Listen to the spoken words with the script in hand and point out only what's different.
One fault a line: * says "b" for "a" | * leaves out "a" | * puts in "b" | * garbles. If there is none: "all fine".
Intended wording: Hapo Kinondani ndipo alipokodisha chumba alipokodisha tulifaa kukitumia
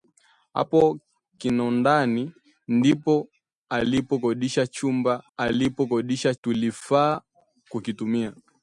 all fine